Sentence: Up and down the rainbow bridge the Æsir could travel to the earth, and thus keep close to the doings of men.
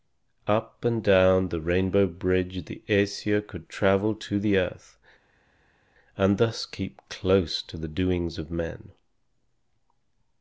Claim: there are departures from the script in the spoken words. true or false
false